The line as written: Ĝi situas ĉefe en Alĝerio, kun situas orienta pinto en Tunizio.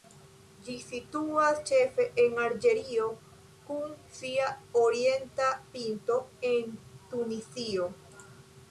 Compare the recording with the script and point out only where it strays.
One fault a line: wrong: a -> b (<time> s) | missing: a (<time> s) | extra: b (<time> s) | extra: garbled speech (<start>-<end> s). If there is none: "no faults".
wrong: situas -> sia (4.2 s)